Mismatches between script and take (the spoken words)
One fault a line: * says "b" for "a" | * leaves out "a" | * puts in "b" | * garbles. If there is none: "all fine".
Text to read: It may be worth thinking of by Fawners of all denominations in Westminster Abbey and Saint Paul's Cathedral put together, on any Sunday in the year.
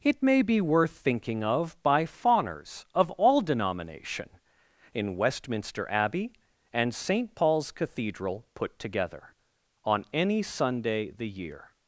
* says "denomination" for "denominations"
* leaves out "in"